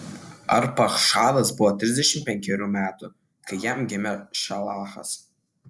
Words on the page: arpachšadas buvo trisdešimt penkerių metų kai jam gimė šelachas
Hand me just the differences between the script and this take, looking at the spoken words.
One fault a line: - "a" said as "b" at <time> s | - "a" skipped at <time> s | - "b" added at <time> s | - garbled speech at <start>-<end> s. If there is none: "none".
none